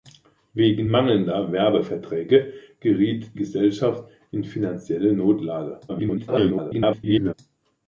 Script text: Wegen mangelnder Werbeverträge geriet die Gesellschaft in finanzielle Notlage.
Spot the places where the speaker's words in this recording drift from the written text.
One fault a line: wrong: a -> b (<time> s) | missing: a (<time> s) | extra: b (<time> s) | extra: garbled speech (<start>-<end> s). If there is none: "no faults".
missing: die (3.4 s)
extra: garbled speech (5.9-7.3 s)